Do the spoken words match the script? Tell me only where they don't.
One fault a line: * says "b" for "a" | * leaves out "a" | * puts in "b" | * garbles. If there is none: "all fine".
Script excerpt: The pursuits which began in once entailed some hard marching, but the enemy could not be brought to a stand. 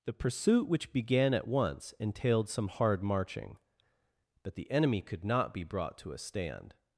* says "pursuit" for "pursuits"
* says "at" for "in"